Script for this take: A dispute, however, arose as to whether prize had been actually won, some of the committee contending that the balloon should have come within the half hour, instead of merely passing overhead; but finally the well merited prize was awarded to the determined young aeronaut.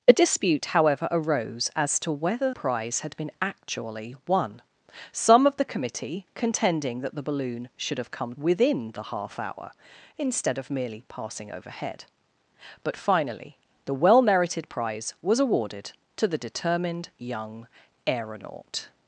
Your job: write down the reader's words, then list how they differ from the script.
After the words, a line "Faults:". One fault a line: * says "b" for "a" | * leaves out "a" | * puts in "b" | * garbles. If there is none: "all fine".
A dispute, however, arose as to whether prize had been actually won, some of the committee contending that the balloon should have come within the half hour, instead of merely passing overhead; but finally the well merited prize was awarded to the determined young aeronaut.
Faults:
all fine